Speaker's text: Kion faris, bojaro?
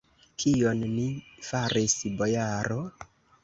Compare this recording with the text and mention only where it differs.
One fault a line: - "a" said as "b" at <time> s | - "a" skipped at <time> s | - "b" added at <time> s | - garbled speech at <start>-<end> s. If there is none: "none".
- "ni" added at 0.9 s